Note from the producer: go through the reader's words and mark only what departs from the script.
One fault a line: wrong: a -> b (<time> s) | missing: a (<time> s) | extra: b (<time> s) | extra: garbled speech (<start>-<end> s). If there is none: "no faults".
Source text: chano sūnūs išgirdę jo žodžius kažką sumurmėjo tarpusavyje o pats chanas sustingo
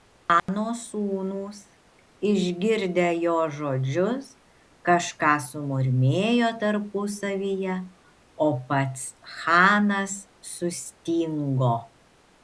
no faults